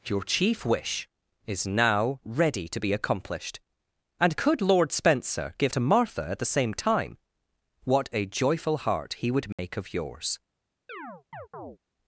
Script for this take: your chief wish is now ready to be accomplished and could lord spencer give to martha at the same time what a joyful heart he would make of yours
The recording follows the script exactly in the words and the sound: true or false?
false